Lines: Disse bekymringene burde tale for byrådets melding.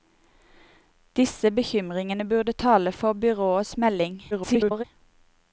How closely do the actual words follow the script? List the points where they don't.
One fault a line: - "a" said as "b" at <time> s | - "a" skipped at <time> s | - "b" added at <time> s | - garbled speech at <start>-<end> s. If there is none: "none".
- garbled speech at 4.3-4.8 s